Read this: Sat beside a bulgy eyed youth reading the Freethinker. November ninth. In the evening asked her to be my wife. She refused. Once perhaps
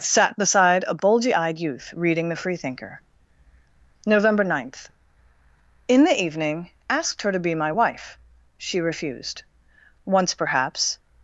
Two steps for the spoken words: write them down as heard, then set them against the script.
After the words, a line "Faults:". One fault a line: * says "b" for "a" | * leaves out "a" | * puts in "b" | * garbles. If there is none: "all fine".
Sat beside a bulgy eyed youth reading the Freethinker. November ninth. In the evening asked her to be my wife. She refused. Once perhaps
Faults:
all fine